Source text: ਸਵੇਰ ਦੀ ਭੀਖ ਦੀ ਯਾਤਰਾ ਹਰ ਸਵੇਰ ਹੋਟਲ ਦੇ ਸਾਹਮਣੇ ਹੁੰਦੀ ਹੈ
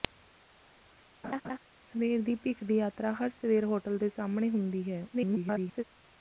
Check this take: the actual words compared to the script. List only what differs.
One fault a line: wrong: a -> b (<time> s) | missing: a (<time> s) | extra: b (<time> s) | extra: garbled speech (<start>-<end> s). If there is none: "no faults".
extra: garbled speech (5.1-5.8 s)